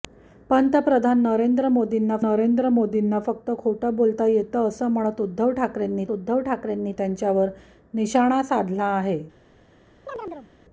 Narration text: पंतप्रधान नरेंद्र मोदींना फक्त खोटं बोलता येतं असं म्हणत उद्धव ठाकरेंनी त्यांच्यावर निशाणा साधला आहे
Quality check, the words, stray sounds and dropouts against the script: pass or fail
fail